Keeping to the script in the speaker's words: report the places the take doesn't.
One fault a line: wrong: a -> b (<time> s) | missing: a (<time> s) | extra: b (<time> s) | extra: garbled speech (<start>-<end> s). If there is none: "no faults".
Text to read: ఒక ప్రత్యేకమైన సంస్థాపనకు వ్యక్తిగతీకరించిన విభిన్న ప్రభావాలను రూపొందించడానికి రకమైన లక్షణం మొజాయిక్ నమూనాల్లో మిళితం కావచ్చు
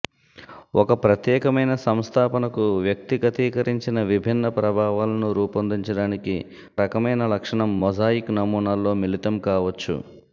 no faults